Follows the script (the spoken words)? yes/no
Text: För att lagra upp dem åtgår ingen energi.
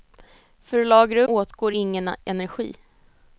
no